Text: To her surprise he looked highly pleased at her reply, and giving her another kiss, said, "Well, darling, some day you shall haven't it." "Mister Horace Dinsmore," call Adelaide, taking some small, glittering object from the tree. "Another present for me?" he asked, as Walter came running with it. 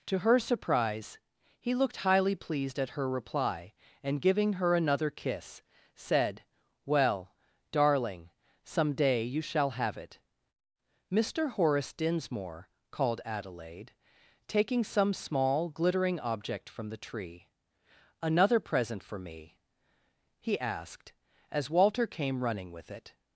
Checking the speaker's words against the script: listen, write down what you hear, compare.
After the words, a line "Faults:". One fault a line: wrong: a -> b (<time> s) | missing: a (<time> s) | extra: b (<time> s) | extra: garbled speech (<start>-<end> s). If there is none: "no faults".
To her surprise he looked highly pleased at her reply, and giving her another kiss, said, "Well, darling, some day you shall have it." "Mister Horace Dinsmore," called Adelaide, taking some small, glittering object from the tree. "Another present for me?" he asked, as Walter came running with it.
Faults:
wrong: haven't -> have (9.8 s)
wrong: call -> called (12.9 s)